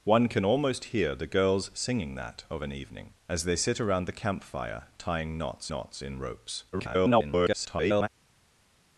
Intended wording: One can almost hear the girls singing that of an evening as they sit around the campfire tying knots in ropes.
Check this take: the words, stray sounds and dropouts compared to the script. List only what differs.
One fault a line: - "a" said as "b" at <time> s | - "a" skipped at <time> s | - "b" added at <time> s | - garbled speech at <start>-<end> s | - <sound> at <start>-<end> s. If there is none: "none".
- "knots" added at 5.7 s
- garbled speech at 6.7-8.1 s